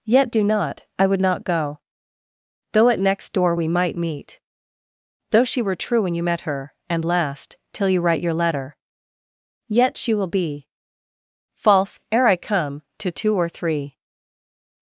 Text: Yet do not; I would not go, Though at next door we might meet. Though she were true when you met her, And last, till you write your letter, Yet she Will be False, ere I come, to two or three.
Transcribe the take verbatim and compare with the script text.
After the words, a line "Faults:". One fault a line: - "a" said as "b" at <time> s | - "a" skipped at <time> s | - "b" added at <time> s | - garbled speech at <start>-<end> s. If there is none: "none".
Yet do not; I would not go, Though at next door we might meet. Though she were true when you met her, And last, till you write your letter, Yet she Will be False, ere I come, to two or three.
Faults:
none